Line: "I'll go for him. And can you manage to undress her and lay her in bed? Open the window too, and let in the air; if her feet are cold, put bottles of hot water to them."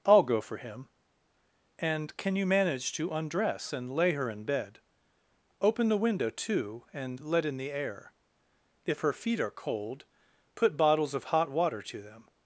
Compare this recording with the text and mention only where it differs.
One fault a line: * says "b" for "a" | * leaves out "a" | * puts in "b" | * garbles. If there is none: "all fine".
* leaves out "her"